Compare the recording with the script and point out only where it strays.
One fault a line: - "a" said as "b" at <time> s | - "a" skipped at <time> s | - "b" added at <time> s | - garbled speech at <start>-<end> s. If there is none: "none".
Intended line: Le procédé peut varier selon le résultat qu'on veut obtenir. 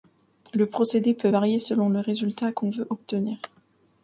none